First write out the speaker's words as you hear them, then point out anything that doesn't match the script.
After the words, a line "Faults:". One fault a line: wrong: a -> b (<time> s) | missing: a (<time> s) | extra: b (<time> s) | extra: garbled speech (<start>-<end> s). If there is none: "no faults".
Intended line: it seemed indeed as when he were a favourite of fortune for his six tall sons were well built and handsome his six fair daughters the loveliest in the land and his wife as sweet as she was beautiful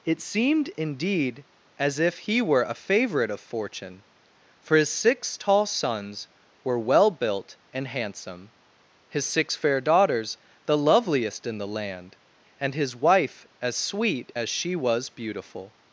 it seemed indeed as if he were a favourite of fortune for his six tall sons were well built and handsome his six fair daughters the loveliest in the land and his wife as sweet as she was beautiful
Faults:
wrong: when -> if (2.0 s)